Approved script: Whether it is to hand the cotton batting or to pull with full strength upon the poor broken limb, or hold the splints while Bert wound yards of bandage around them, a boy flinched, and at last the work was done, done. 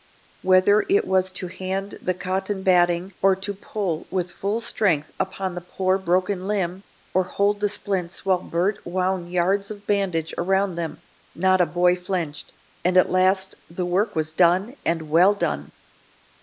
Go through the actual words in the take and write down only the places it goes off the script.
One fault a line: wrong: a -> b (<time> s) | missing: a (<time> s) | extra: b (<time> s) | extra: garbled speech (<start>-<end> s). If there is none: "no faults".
wrong: is -> was (1.1 s)
extra: not (11.3 s)
extra: and well (14.8 s)